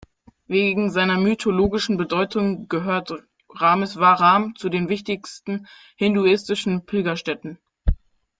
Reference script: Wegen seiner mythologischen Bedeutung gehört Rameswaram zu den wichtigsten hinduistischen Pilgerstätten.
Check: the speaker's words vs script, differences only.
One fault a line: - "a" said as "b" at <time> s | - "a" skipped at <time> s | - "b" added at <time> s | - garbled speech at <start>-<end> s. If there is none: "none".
none